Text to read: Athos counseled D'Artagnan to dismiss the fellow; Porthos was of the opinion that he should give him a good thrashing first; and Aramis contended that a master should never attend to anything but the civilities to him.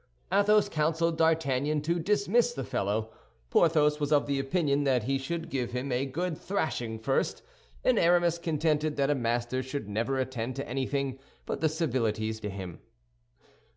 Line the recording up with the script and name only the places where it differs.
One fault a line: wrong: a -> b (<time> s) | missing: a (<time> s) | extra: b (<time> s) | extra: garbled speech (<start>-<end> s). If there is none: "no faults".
no faults